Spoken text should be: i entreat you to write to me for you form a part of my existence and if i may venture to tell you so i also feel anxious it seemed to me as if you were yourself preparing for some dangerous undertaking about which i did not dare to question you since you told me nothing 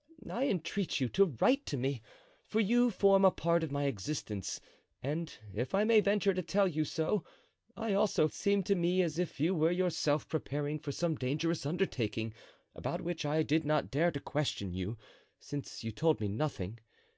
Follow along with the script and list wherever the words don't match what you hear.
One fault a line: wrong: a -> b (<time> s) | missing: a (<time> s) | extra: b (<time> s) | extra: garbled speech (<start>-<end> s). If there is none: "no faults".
missing: feel anxious it (8.3 s)